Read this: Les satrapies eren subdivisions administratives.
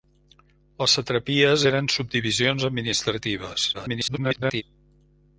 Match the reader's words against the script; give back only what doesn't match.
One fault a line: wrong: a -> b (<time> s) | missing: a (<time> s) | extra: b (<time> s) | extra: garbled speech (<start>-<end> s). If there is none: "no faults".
extra: garbled speech (3.7-4.6 s)